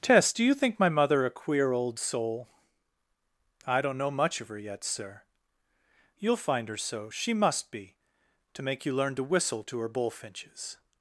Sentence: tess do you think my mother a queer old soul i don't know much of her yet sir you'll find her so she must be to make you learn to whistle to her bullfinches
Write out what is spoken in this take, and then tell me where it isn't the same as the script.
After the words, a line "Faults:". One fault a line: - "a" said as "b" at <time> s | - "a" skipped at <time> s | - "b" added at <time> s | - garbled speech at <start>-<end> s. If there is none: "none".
tess do you think my mother a queer old soul i don't know much of her yet sir you'll find her so she must be to make you learn to whistle to her bullfinches
Faults:
none